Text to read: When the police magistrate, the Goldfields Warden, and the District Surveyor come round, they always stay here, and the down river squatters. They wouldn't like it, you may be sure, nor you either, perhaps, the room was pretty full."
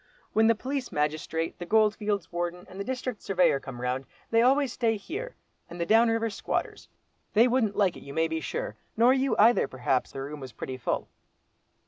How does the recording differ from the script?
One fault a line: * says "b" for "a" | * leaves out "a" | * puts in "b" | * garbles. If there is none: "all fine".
all fine